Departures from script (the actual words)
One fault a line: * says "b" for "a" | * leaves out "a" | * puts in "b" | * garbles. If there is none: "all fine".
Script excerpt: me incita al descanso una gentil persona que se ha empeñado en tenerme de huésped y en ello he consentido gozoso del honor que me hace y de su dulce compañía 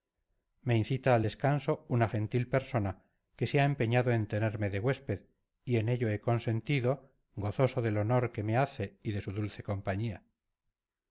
all fine